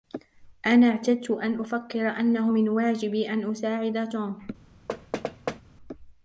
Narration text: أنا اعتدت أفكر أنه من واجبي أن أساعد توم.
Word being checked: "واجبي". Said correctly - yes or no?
yes